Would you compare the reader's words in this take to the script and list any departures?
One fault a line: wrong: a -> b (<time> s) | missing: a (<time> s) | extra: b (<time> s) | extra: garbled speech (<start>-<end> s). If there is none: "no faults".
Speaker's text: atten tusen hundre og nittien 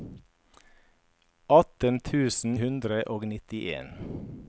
no faults